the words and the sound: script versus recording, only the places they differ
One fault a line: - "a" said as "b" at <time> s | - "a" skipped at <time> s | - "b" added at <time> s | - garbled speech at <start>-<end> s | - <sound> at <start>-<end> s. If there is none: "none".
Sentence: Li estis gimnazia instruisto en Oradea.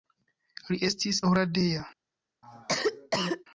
- "gimnazia instruisto en" skipped at 1.2 s
- cough at 2.4-3.4 s